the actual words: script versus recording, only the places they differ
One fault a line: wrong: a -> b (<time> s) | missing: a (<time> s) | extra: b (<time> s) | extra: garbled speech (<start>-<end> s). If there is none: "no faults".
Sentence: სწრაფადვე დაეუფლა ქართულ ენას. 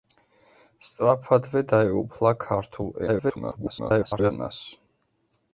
extra: garbled speech (3.1-4.3 s)